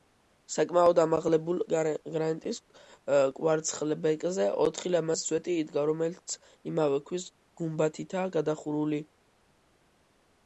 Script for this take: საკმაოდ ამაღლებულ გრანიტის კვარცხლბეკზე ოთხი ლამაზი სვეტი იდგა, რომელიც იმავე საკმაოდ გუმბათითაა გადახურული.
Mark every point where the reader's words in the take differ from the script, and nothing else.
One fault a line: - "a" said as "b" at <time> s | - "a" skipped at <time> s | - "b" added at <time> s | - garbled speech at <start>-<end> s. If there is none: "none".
- "საკმაოდ" said as "ქვის" at 7.1 s